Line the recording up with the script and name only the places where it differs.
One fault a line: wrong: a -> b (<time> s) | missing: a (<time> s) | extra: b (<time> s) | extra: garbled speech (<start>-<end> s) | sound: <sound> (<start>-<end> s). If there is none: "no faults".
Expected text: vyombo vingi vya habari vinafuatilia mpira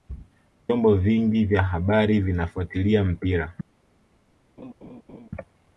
sound: laugh (4.6-5.3 s)